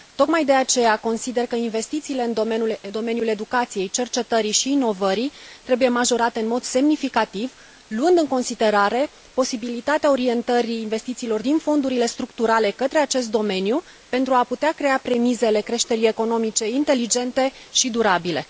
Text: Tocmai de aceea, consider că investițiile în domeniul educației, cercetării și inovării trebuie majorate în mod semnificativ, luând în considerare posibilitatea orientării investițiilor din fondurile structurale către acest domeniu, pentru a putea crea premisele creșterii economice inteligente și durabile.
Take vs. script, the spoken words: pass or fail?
pass